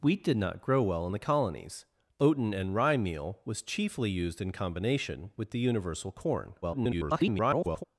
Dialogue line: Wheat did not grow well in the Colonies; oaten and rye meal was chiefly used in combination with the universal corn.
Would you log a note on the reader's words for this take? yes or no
yes